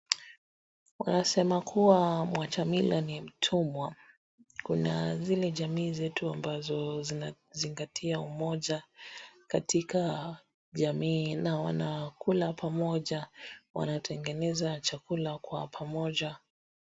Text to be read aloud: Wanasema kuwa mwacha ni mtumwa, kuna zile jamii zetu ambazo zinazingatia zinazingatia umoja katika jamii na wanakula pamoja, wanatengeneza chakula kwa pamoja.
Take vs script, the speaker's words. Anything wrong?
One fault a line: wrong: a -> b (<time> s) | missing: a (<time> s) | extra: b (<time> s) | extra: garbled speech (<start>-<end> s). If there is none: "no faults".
extra: mila (2.7 s)
missing: zinazingatia (8.2 s)